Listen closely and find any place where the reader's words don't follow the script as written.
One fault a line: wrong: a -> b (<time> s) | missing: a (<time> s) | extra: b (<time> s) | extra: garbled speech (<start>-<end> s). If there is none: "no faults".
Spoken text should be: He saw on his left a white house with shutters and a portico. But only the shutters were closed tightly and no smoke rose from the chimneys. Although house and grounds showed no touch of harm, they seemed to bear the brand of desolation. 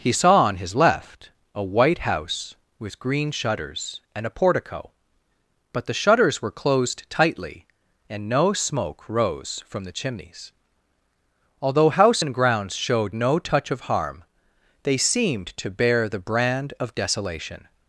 extra: green (3.0 s)
missing: only (5.8 s)